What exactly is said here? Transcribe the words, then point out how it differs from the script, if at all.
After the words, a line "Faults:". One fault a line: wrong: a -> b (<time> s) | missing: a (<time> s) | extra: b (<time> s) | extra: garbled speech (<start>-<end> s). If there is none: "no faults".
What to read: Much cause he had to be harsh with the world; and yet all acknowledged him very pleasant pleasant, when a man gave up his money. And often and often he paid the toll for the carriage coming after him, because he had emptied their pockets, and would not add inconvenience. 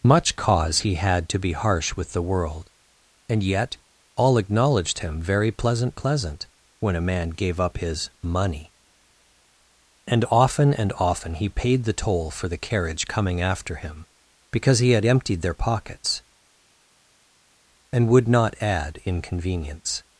Much cause he had to be harsh with the world; and yet all acknowledged him very pleasant pleasant, when a man gave up his money. And often and often he paid the toll for the carriage coming after him, because he had emptied their pockets, and would not add inconvenience.
Faults:
no faults